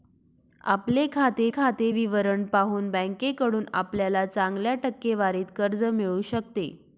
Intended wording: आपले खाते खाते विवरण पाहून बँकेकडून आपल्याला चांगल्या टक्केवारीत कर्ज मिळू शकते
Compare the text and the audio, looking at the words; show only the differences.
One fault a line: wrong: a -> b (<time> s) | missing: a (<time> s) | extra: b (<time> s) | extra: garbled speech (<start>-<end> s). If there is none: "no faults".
no faults